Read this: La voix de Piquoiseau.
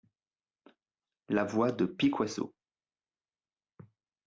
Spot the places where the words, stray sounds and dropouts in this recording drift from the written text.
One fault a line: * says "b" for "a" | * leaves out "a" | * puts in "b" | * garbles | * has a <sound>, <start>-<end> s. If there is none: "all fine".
all fine